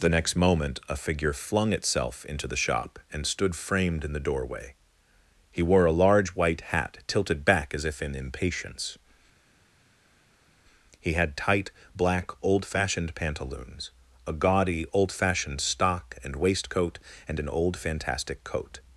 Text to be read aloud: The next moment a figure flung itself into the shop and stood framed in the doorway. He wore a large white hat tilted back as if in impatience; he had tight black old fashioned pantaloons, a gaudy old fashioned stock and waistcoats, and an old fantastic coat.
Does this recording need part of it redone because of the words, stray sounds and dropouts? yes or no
yes